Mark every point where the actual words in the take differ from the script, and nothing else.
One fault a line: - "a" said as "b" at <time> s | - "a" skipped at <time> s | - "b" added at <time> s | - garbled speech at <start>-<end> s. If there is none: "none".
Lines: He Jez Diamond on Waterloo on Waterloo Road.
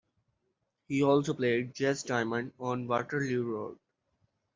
- "also played" added at 1.0 s
- "on Waterloo" skipped at 3.4 s